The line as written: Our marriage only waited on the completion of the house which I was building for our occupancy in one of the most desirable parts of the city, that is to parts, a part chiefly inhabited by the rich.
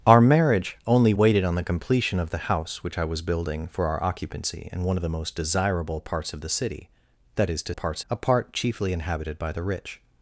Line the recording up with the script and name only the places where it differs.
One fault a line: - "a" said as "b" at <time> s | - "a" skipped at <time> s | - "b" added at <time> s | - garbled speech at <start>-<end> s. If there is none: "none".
none